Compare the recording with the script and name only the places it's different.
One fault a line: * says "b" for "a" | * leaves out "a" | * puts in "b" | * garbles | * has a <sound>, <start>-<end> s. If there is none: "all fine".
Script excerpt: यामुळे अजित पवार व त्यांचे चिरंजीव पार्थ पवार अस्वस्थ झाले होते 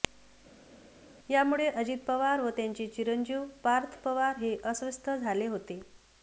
* puts in "हे"